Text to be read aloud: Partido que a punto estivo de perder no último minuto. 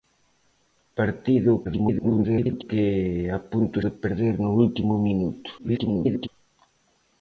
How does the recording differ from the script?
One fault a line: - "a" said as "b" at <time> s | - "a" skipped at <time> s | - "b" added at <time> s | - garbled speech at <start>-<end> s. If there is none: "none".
- garbled speech at 1.6-2.6 s
- "estivo" skipped at 3.8 s
- garbled speech at 5.6-6.3 s